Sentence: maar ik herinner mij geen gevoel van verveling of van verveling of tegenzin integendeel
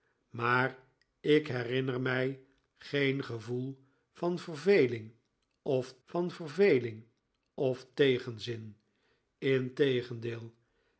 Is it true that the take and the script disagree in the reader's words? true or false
false